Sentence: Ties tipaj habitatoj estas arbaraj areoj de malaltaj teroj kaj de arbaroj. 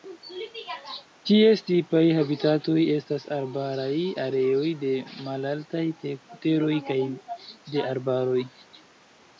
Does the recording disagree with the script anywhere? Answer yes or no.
no